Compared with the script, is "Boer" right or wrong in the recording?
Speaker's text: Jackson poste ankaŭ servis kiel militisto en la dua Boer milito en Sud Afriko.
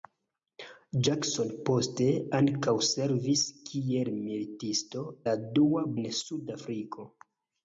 wrong